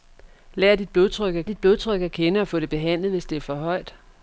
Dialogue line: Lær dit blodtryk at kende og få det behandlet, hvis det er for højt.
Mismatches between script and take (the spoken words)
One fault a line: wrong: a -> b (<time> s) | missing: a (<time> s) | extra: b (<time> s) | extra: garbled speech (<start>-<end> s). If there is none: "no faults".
extra: dit blodtryk at (1.4 s)